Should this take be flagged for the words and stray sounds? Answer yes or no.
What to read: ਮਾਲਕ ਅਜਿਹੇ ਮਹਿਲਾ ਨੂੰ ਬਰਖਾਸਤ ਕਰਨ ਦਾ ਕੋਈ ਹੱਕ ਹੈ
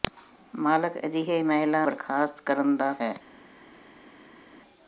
yes